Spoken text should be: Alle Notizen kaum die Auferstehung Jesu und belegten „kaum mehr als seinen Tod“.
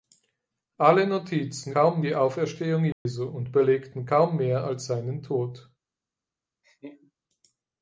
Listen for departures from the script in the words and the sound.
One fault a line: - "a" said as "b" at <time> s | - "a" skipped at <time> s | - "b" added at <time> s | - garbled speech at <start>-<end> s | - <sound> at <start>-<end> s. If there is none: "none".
- dropout at 2.9-3.1 s
- laugh at 6.6-7.1 s